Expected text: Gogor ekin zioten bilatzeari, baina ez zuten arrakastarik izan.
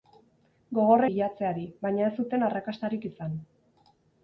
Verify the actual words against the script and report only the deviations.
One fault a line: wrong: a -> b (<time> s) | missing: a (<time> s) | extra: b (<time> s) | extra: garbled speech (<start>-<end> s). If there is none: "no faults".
missing: ekin zioten (1.0 s)